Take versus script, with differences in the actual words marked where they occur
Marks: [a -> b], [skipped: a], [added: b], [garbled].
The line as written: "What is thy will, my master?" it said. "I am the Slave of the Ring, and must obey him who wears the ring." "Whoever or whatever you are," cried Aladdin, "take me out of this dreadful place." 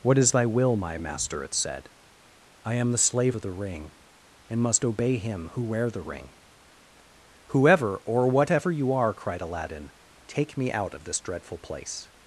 "What is thy will, my master?" it said. "I am the Slave of the Ring, and must obey him who [wears -> wear] the ring." "Whoever or whatever you are," cried Aladdin, "take me out of this dreadful place."